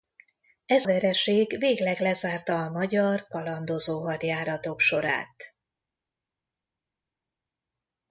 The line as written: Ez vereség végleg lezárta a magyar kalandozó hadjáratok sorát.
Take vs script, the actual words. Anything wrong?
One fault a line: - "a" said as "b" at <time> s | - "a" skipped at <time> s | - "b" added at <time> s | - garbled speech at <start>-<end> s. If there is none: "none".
none